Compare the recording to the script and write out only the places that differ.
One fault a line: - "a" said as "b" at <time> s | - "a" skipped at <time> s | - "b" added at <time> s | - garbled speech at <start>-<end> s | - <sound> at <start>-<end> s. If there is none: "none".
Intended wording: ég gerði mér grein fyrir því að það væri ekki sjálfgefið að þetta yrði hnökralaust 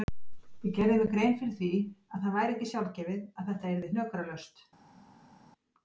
none